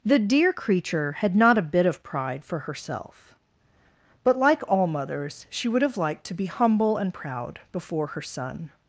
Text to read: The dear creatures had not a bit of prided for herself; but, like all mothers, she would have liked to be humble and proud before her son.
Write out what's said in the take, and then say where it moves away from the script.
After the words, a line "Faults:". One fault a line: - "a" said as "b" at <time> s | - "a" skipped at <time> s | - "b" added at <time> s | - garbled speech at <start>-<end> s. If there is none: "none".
The dear creature had not a bit of pride for herself; but, like all mothers, she would have liked to be humble and proud before her son.
Faults:
- "creatures" said as "creature" at 0.5 s
- "prided" said as "pride" at 2.0 s